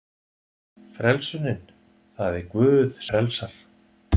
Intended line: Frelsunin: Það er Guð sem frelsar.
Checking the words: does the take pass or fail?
fail